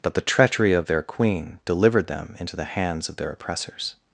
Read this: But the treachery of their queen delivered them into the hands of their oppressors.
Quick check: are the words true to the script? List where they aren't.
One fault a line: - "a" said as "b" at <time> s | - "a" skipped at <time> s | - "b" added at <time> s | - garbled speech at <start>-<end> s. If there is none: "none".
none